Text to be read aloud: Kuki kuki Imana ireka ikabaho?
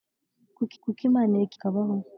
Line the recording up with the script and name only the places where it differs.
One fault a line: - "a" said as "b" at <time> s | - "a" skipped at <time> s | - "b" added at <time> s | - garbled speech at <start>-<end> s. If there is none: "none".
none